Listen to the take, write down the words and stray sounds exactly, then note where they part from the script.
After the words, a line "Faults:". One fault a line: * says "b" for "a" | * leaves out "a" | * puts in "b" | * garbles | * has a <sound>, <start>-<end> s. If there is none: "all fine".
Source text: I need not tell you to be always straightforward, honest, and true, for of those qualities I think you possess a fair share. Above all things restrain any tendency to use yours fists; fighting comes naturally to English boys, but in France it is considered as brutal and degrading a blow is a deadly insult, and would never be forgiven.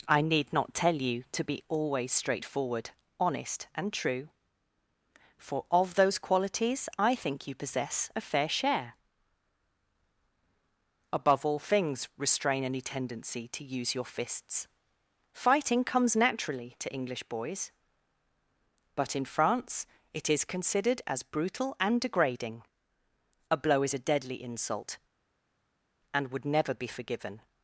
I need not tell you to be always straightforward, honest, and true, for of those qualities I think you possess a fair share. Above all things restrain any tendency to use your fists; fighting comes naturally to English boys, but in France it is considered as brutal and degrading a blow is a deadly insult, and would never be forgiven.
Faults:
* says "your" for "yours"